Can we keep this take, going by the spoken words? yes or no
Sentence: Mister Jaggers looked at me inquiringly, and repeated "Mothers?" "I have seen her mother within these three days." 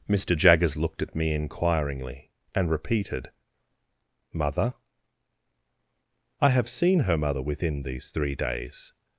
no